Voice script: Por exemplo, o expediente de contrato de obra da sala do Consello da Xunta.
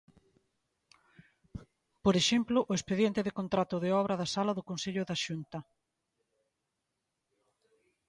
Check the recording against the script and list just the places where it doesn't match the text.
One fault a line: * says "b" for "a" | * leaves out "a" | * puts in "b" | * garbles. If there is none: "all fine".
all fine